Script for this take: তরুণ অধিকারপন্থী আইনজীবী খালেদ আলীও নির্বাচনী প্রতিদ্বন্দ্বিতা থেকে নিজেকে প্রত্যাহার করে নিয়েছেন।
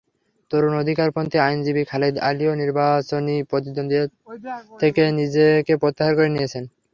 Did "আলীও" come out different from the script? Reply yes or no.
no